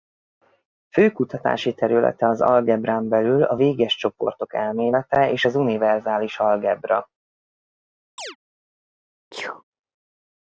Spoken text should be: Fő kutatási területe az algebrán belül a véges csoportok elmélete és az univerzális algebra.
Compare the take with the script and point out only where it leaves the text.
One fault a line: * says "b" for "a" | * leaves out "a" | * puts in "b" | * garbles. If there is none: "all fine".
all fine